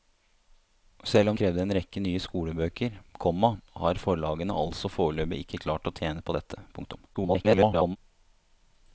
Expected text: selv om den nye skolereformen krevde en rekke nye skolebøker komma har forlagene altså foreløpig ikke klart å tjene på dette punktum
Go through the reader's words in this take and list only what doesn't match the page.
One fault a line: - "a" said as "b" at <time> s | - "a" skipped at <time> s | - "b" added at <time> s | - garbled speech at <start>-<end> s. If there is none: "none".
- "den nye skolereformen" skipped at 1.4 s
- garbled speech at 7.1-8.0 s